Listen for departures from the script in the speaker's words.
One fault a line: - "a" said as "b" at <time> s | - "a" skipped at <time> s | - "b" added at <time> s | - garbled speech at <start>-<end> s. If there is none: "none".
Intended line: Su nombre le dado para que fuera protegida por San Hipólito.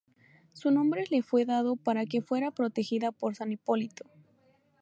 - "fue" added at 1.2 s